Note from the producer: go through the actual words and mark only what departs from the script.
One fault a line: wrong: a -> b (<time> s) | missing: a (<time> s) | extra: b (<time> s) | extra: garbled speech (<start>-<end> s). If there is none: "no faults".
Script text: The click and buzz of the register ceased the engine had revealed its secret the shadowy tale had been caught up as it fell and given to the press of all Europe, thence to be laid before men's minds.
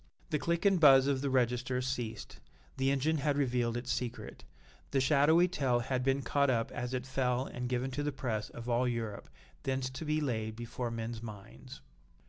no faults